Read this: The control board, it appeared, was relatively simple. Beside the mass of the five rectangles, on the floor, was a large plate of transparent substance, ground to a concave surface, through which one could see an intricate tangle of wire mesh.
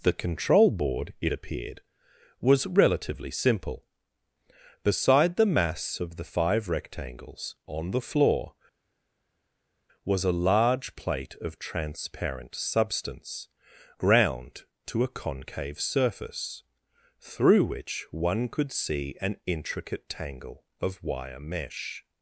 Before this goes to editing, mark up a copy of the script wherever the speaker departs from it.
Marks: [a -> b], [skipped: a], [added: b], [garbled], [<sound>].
The control board, it appeared, was relatively simple. Beside the mass of the five rectangles, on the floor, was a large plate of transparent substance, ground to a concave surface, through which one could see an intricate tangle of wire mesh.